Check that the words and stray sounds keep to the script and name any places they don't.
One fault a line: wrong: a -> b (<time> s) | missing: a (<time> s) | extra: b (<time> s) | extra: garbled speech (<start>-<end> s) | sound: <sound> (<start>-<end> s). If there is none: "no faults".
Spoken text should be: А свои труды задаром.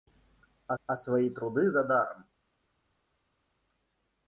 extra: а (0.8 s)